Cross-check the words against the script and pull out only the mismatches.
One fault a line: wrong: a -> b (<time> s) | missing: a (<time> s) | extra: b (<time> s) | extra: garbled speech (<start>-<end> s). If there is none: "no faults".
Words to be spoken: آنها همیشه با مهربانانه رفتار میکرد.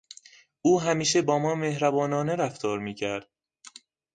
wrong: آنها -> او (0.6 s)
extra: ما (1.4 s)